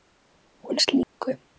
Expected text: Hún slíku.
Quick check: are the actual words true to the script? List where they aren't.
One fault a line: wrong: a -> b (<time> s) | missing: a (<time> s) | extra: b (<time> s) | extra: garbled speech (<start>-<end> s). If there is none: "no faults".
no faults